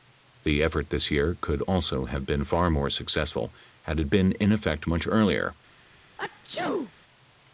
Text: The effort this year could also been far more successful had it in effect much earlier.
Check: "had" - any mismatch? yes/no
no